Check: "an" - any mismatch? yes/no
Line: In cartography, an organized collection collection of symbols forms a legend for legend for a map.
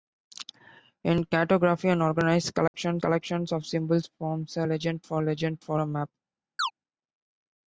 no